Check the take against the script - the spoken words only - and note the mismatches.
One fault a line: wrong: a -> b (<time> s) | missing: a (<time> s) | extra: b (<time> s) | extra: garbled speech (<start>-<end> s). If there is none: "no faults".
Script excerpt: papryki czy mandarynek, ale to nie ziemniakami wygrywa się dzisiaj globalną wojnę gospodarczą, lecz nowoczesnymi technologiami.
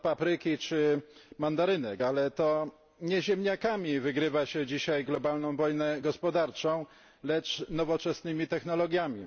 no faults